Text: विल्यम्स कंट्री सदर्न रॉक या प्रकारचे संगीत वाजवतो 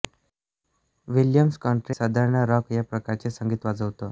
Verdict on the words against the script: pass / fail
pass